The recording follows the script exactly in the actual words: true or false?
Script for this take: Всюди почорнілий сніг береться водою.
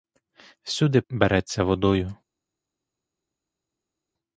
false